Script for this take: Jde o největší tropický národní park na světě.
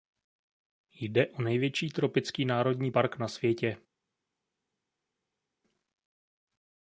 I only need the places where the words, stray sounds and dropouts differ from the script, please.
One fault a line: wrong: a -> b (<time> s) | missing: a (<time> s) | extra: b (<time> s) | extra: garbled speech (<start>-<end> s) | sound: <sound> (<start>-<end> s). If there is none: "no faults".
no faults